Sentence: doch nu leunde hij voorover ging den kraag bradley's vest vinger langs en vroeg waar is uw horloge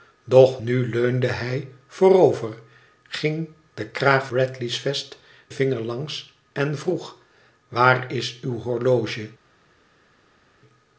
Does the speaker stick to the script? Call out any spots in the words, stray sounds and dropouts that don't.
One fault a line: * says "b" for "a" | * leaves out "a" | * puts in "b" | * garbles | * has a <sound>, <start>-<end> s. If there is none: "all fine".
all fine